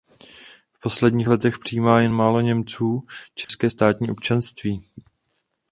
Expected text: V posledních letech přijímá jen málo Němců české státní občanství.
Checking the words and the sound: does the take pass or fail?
fail